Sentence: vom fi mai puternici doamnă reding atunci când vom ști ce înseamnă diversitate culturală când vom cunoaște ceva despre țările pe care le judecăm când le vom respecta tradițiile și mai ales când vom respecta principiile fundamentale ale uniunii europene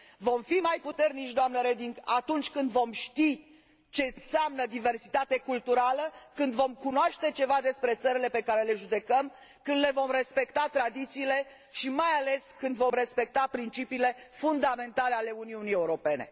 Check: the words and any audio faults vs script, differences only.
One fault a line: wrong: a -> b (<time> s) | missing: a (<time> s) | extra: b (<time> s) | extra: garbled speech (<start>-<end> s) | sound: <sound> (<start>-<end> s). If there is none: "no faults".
no faults